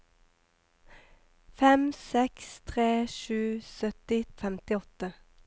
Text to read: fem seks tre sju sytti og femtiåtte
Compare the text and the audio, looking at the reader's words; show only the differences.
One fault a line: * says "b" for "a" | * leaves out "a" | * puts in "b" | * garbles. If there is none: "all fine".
all fine